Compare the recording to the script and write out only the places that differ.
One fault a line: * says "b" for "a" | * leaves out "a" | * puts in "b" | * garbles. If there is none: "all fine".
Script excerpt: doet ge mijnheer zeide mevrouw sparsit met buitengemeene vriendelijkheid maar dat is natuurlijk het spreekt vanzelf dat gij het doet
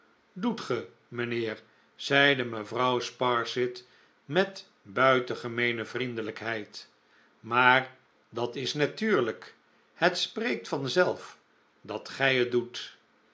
all fine